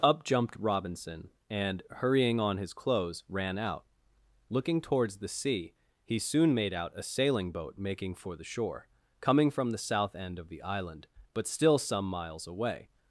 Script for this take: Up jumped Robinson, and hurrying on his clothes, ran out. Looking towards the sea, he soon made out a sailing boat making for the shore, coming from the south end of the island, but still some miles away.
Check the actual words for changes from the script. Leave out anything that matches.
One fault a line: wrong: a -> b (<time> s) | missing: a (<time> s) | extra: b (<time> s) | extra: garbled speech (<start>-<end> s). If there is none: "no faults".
no faults